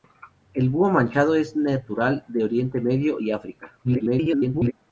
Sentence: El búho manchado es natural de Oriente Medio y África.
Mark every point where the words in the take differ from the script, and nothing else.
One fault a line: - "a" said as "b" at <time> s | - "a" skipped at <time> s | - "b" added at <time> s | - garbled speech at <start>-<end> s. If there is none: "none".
- garbled speech at 3.8-4.7 s